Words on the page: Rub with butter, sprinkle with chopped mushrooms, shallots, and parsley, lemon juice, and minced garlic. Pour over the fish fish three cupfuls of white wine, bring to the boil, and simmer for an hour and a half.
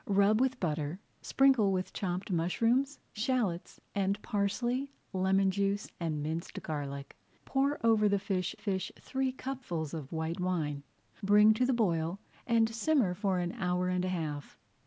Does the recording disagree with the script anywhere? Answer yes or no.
no